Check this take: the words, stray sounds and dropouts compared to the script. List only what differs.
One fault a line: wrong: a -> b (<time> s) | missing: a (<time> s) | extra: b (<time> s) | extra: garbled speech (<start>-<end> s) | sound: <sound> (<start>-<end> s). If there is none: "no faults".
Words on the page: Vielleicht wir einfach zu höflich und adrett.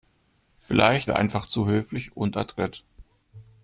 no faults